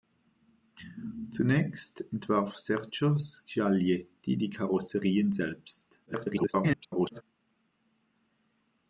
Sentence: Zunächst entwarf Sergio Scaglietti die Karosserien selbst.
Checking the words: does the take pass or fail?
fail